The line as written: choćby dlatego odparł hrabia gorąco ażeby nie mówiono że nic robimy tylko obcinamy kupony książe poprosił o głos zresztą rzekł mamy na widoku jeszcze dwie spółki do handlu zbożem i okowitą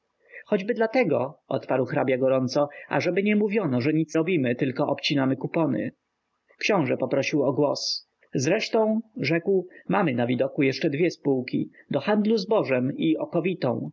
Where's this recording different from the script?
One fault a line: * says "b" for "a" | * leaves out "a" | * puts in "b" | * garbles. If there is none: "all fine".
all fine